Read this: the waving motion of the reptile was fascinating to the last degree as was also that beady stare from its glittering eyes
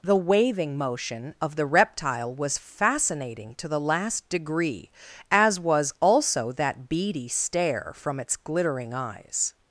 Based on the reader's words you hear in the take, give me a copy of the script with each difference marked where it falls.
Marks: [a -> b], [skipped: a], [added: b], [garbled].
the waving motion of the reptile was fascinating to the last degree as was also that beady stare from its glittering eyes